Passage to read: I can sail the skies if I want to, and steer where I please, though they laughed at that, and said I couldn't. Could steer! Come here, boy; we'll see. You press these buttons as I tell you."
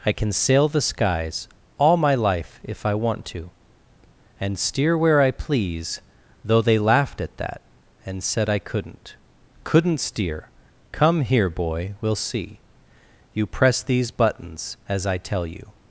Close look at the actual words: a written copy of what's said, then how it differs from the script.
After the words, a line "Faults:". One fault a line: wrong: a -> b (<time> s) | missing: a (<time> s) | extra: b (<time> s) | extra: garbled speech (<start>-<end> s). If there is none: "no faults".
I can sail the skies all my life if I want to, and steer where I please, though they laughed at that, and said I couldn't. Couldn't steer! Come here, boy; we'll see. You press these buttons as I tell you."
Faults:
extra: all my life (1.8 s)
wrong: Could -> Couldn't (9.6 s)